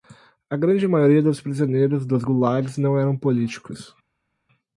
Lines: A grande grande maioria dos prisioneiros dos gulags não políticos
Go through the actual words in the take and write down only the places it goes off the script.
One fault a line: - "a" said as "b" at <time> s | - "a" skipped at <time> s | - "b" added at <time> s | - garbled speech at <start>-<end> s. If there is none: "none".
- "grande" skipped at 0.9 s
- "eram" added at 3.0 s